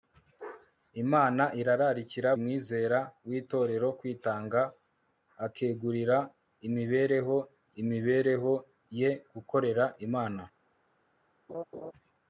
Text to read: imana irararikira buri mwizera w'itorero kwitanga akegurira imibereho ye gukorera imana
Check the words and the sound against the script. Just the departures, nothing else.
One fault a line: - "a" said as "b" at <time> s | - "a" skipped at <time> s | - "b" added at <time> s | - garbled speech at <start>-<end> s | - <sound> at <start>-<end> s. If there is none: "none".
- "buri" skipped at 2.3 s
- "imibereho" added at 7.8 s
- laugh at 11.5-11.9 s